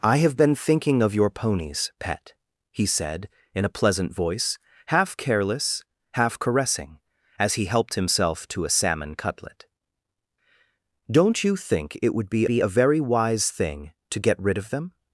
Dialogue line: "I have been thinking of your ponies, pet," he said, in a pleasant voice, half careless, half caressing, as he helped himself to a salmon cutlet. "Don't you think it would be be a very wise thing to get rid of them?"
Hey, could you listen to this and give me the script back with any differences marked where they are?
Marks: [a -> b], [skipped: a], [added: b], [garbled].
"I have been thinking of your ponies, pet," he said, in a pleasant voice, half careless, half caressing, as he helped himself to a salmon cutlet. "Don't you think it would be be a very wise thing to get rid of them?"